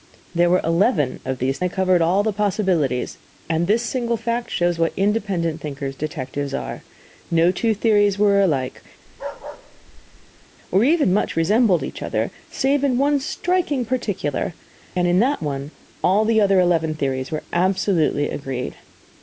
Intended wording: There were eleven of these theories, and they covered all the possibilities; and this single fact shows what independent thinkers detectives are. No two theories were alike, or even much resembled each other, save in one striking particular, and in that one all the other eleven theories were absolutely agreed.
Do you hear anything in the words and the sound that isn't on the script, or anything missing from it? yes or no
yes